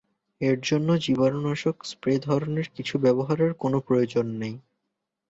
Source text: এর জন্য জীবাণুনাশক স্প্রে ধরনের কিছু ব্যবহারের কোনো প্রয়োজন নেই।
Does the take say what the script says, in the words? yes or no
yes